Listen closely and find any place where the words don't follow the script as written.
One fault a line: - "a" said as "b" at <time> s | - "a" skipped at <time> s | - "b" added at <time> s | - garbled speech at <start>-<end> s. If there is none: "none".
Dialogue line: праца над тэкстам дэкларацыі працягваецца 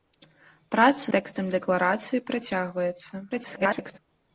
- "над" skipped at 1.1 s
- garbled speech at 3.3-4.0 s